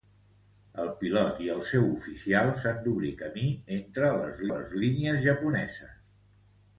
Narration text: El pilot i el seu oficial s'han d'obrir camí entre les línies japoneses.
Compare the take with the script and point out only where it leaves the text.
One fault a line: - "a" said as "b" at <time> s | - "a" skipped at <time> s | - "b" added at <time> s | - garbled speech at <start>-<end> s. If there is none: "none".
- "les" added at 4.5 s